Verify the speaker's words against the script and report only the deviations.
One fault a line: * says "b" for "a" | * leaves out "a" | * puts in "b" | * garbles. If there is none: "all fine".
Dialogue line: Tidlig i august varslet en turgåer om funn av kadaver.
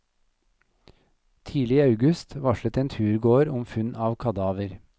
all fine